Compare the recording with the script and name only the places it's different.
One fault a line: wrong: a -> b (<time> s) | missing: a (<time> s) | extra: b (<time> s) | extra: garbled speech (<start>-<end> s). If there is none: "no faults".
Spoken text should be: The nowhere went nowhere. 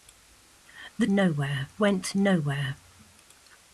no faults